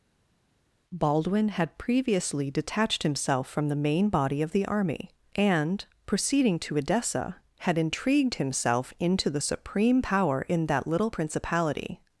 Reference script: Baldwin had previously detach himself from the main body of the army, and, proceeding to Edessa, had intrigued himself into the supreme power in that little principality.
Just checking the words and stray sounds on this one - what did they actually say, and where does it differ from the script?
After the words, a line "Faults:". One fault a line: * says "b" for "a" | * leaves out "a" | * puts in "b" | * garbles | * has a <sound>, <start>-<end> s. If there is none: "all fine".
Baldwin had previously detached himself from the main body of the army, and, proceeding to Edessa, had intrigued himself into the supreme power in that little principality.
Faults:
* says "detached" for "detach"